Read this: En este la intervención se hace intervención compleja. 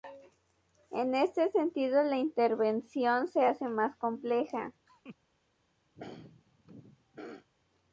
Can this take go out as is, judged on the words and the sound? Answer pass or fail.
fail